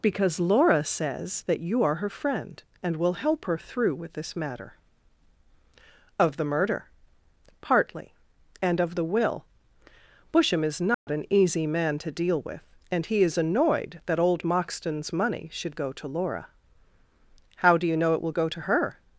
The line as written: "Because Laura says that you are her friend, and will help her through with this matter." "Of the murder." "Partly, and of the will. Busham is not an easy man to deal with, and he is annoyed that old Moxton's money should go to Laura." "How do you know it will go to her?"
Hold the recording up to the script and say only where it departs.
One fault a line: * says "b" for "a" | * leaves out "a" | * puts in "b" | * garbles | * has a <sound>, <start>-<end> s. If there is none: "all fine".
* has a dropout, 10.9-11.1 s